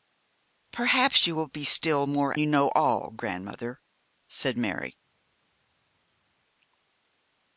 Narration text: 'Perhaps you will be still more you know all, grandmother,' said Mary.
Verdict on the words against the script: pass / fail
pass